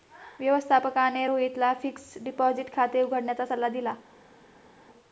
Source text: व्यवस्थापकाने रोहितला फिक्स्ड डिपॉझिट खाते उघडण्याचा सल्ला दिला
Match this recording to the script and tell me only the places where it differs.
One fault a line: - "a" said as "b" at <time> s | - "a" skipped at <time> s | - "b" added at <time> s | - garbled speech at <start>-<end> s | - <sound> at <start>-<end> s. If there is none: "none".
none